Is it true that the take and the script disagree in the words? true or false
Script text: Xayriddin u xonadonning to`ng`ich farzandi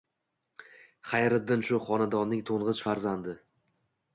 true